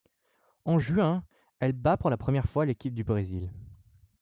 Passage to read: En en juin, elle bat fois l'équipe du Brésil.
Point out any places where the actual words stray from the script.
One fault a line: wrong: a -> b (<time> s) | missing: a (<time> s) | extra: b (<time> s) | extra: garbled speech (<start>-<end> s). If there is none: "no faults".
missing: en (0.8 s)
extra: pour la première (2.0 s)